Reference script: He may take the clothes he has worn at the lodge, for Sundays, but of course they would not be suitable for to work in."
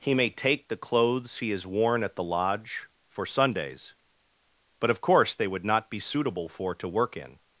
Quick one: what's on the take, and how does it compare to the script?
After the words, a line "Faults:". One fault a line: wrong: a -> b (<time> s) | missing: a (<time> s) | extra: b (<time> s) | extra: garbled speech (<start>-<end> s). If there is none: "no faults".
He may take the clothes he has worn at the lodge, for Sundays, but of course they would not be suitable for to work in."
Faults:
no faults